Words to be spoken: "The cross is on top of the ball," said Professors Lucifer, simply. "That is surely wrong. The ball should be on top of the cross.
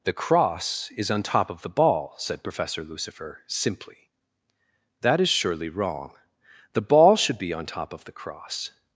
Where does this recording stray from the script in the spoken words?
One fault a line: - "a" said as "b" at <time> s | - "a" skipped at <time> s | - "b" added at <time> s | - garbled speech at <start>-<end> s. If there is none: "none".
- "Professors" said as "Professor" at 2.4 s